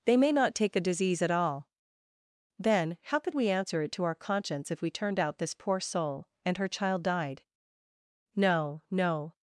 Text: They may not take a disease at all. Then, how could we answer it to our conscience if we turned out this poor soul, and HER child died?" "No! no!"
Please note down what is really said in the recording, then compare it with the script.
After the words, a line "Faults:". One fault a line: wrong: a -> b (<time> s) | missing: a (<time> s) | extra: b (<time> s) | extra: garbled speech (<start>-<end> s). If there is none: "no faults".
They may not take a disease at all. Then, how could we answer it to our conscience if we turned out this poor soul, and HER child died?" "No! no!"
Faults:
no faults